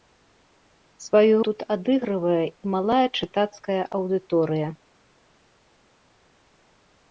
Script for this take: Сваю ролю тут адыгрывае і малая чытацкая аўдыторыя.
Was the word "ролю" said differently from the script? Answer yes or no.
yes